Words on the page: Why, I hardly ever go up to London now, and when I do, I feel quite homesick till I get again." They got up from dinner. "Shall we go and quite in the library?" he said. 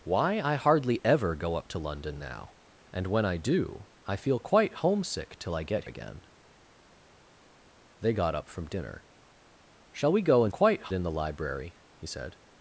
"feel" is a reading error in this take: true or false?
false